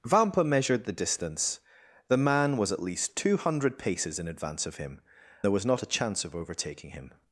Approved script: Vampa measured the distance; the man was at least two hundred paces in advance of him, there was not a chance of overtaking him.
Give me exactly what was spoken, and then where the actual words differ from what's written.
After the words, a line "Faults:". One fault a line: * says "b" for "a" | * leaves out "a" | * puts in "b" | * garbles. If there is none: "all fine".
Vampa measured the distance; the man was at least two hundred paces in advance of him, there was not a chance of overtaking him.
Faults:
all fine